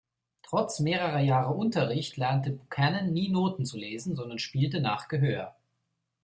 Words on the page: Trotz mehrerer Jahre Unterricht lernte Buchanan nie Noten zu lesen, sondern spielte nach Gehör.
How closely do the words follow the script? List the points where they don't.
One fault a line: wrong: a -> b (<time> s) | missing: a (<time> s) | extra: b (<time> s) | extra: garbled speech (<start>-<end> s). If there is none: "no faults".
no faults